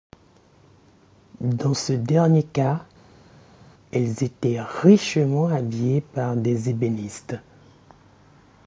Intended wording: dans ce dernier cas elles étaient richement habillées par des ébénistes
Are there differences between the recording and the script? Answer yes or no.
no